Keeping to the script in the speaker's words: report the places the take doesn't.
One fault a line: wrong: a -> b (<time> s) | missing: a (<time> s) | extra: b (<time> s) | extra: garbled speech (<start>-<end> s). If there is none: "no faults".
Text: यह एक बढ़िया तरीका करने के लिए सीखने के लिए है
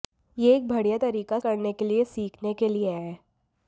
no faults